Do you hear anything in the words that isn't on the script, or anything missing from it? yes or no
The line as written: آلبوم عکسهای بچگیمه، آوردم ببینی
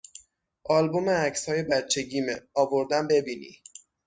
no